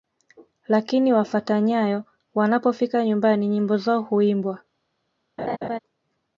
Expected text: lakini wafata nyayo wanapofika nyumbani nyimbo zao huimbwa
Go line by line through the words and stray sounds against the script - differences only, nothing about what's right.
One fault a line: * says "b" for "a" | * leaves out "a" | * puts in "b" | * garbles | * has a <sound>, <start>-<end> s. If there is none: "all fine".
* has a laugh, 5.4-5.8 s